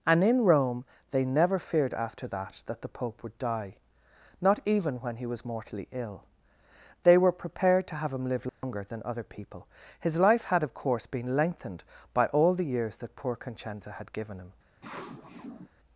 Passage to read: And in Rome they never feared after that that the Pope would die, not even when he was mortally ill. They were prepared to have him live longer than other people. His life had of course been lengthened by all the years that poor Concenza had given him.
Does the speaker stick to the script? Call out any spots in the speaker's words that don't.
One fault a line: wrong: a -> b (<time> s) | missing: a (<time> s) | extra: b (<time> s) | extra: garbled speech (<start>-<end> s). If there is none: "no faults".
no faults